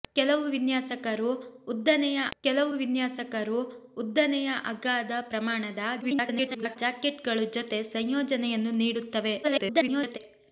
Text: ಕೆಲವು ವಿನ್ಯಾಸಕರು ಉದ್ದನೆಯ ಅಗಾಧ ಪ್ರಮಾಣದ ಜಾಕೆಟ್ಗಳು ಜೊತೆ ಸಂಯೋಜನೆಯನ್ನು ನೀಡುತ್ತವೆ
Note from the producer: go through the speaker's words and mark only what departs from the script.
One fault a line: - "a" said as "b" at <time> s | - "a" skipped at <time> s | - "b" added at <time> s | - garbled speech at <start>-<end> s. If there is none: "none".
- "ಕೆಲವು ವಿನ್ಯಾಸಕರು ಉದ್ದನೆಯ" added at 2.4 s
- garbled speech at 6.0-6.8 s
- garbled speech at 9.4-10.2 s